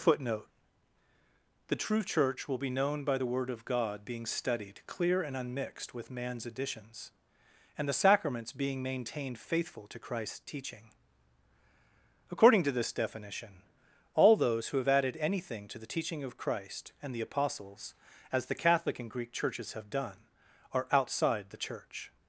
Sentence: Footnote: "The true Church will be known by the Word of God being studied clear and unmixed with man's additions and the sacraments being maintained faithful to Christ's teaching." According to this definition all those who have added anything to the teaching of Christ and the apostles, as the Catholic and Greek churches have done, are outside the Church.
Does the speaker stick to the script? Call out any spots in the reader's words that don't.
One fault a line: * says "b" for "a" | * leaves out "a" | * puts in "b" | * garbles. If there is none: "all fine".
all fine